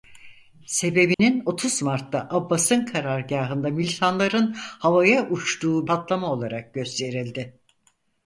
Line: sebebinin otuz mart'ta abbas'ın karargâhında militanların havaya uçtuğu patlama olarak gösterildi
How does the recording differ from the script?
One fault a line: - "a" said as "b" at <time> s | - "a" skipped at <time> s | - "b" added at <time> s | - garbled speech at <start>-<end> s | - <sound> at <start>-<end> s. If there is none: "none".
- dropout at 1.1-1.2 s